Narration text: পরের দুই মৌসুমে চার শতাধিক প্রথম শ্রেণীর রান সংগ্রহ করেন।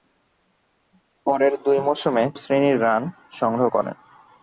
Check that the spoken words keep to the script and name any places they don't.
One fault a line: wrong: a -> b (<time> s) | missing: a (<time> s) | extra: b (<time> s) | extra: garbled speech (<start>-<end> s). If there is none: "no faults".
missing: চার শতাধিক প্রথম (2.2 s)